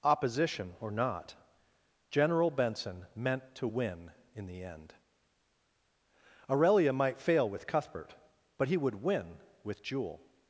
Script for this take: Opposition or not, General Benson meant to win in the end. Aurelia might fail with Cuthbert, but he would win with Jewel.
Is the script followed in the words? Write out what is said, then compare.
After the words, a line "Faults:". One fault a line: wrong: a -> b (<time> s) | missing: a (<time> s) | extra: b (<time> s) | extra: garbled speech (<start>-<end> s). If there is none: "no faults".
Opposition or not, General Benson meant to win in the end. Aurelia might fail with Cuthbert, but he would win with Jewel.
Faults:
no faults